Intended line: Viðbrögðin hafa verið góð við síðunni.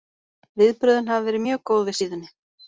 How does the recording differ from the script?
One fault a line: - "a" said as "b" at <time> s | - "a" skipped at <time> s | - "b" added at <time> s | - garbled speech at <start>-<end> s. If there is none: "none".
- "mjög" added at 1.5 s